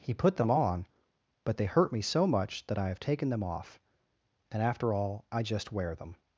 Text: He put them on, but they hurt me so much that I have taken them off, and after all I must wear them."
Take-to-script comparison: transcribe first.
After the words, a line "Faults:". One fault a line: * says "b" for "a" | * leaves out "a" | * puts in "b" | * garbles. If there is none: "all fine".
He put them on, but they hurt me so much that I have taken them off, and after all I just wear them."
Faults:
* says "just" for "must"